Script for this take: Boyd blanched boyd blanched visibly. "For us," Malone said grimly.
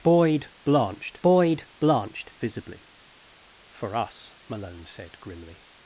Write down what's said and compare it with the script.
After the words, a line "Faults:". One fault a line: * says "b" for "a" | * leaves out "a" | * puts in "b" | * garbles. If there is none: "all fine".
Boyd blanched boyd blanched visibly. "For us," Malone said grimly.
Faults:
all fine